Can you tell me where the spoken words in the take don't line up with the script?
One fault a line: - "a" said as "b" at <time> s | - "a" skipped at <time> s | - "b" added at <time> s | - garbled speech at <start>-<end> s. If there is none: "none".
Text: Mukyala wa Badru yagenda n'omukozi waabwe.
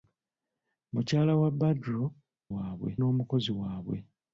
- "yagenda" said as "waabwe" at 2.5 s